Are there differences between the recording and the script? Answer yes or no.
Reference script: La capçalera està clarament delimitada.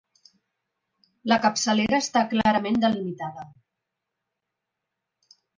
no